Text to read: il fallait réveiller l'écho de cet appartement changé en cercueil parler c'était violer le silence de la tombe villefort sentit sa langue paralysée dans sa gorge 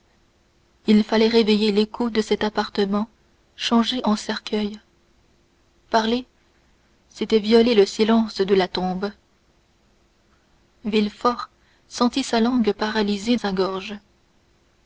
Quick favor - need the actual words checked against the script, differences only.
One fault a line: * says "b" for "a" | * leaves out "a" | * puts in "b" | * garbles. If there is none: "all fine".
* leaves out "dans"